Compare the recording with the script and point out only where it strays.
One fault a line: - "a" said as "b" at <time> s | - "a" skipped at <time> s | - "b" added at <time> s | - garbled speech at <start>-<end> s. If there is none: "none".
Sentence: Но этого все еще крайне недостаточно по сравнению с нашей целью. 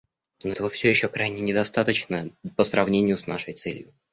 none